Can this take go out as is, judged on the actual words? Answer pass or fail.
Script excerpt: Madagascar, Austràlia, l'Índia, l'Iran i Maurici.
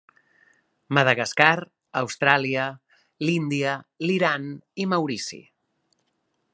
pass